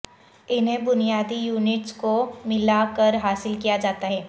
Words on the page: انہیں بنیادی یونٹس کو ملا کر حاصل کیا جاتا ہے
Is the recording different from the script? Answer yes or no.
no